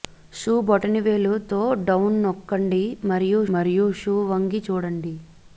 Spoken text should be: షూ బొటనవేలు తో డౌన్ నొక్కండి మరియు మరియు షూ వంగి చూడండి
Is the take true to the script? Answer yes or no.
yes